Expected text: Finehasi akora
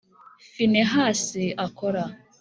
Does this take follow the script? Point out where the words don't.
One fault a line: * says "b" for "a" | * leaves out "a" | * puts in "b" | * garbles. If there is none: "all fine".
all fine